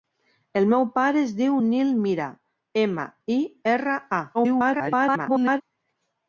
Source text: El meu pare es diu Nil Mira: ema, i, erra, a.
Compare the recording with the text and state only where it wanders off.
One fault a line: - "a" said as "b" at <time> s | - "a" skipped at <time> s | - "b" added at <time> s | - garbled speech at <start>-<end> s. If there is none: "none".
- garbled speech at 4.3-5.6 s